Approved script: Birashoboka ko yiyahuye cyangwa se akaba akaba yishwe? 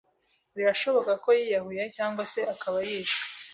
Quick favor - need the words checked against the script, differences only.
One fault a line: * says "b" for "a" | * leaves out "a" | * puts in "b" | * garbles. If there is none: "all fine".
* leaves out "akaba"